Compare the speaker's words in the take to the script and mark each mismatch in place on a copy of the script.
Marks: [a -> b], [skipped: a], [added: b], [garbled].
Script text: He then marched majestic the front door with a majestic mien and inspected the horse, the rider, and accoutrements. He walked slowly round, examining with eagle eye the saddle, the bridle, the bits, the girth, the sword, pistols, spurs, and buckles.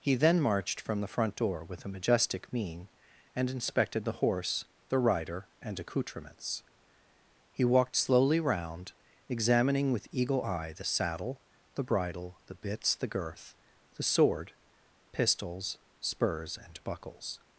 He then marched [majestic -> from] the front door with a majestic mien and inspected the horse, the rider, and accoutrements. He walked slowly round, examining with eagle eye the saddle, the bridle, the bits, the girth, the sword, pistols, spurs, and buckles.